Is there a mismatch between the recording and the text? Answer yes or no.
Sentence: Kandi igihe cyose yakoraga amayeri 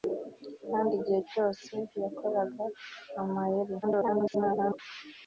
yes